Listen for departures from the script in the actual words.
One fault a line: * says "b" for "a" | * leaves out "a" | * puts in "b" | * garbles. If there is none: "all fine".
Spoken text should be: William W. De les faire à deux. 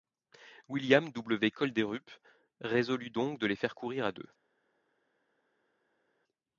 * puts in "Kolderup résolut donc"
* puts in "courir"